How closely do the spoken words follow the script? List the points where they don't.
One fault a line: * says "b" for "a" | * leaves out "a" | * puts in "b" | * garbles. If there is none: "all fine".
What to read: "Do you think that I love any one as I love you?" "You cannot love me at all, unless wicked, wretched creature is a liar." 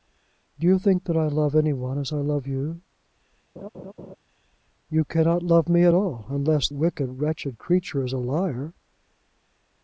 all fine